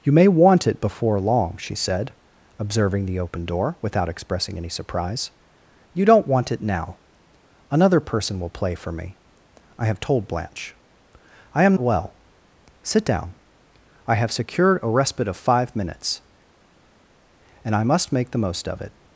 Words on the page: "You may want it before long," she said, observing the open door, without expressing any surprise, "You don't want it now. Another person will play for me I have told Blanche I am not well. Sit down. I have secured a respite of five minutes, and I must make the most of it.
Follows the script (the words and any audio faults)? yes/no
no